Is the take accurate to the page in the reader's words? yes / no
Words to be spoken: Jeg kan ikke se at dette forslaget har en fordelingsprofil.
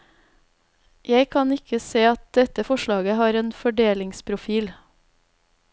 yes